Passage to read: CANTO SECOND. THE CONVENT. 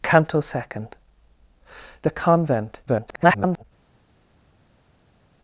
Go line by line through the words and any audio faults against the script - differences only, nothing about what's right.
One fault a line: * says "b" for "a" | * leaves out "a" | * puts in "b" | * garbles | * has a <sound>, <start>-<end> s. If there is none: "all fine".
* garbles